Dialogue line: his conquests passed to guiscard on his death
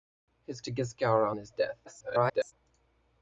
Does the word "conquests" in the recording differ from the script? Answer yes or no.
yes